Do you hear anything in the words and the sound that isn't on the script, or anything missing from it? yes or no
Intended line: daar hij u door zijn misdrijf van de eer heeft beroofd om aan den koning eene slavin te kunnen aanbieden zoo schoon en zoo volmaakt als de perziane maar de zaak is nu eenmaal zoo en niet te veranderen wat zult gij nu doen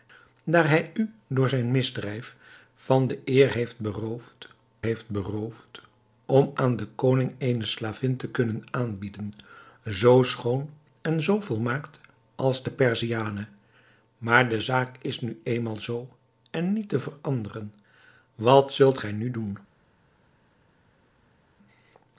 yes